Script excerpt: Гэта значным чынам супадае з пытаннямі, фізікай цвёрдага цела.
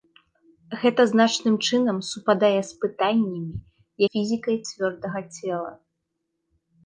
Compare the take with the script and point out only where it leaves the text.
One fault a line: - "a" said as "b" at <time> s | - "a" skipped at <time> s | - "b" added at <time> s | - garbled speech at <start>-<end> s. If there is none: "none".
none